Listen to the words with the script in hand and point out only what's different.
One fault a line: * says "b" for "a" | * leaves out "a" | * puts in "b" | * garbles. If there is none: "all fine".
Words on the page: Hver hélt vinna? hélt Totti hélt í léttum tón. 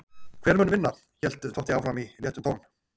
* says "mun" for "hélt"
* says "áfram" for "hélt"